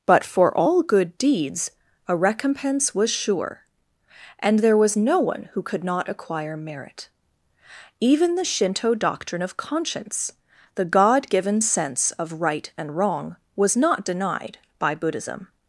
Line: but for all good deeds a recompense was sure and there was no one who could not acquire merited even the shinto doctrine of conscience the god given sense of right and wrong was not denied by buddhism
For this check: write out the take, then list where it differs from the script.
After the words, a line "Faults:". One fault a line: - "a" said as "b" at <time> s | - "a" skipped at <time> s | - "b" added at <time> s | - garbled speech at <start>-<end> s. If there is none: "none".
but for all good deeds a recompense was sure and there was no one who could not acquire merit even the shinto doctrine of conscience the god given sense of right and wrong was not denied by buddhism
Faults:
- "merited" said as "merit" at 6.6 s